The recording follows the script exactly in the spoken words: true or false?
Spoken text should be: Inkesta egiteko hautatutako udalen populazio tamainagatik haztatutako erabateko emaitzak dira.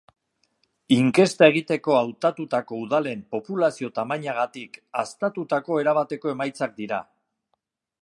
true